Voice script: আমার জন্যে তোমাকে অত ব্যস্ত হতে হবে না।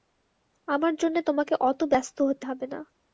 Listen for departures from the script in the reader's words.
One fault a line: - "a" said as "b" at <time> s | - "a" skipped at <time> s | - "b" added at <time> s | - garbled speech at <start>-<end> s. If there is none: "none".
none